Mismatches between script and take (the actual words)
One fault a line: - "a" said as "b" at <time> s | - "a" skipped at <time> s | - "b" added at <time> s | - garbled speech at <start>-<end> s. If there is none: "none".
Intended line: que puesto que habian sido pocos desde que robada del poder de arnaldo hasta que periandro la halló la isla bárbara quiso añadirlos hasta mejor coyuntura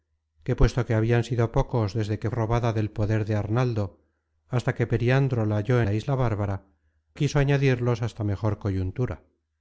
none